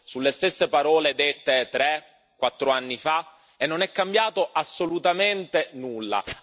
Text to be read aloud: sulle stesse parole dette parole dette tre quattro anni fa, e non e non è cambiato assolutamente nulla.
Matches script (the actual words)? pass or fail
fail